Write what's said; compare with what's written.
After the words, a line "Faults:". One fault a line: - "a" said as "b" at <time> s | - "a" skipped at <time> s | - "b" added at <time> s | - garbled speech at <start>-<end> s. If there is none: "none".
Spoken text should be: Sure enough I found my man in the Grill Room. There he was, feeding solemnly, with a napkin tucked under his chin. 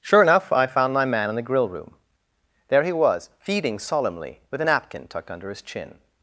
Sure enough I found my man in the Grill Room. There he was, feeding solemnly, with a napkin tucked under his chin.
Faults:
none